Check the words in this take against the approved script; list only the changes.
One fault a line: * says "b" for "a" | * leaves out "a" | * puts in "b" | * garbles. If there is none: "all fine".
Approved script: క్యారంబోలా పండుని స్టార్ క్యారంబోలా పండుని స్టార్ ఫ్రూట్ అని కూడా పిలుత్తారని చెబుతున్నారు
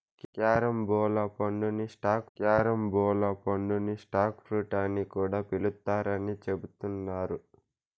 all fine